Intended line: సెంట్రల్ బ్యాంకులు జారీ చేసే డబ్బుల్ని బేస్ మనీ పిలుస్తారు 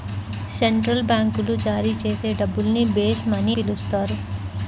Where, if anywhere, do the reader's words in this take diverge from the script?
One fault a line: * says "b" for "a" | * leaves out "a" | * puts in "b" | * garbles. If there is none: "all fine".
all fine